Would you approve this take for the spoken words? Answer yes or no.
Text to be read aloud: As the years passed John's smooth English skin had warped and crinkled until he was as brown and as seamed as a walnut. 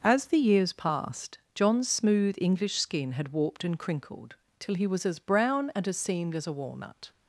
no